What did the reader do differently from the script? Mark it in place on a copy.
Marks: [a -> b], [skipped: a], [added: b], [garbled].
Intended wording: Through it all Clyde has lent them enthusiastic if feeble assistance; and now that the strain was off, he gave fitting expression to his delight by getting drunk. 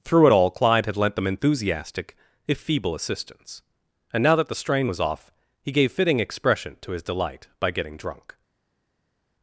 Through it all Clyde [has -> had] lent them enthusiastic if feeble assistance; and now that the strain was off, he gave fitting expression to his delight by getting drunk.